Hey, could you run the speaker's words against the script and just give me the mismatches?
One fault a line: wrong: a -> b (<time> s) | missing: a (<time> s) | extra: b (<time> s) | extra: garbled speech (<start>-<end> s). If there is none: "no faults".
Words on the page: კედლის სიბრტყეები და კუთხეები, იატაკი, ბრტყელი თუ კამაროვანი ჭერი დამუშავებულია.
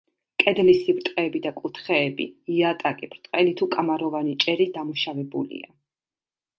no faults